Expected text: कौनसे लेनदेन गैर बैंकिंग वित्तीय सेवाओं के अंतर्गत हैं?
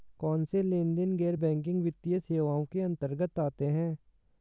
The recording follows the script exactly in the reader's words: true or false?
false